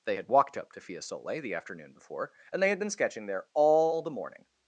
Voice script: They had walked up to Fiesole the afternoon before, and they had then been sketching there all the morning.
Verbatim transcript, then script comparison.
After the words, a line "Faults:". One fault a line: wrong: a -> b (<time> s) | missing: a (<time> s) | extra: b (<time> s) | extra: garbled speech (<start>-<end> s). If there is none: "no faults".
They had walked up to Fiesole the afternoon before, and they had been sketching there all the morning.
Faults:
missing: then (2.8 s)